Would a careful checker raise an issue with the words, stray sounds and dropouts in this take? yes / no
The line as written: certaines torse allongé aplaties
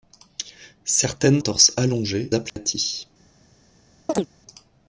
yes